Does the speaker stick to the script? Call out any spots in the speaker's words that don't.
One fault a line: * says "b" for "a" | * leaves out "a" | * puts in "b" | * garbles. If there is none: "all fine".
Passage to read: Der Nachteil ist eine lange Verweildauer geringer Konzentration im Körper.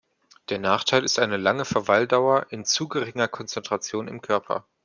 * puts in "in zu"